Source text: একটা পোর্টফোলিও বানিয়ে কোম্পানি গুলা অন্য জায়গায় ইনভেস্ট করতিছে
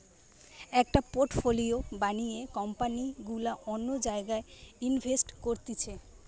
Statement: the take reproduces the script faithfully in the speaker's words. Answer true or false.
true